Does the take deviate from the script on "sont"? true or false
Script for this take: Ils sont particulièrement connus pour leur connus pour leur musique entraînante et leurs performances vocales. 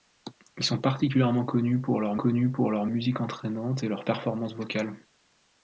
false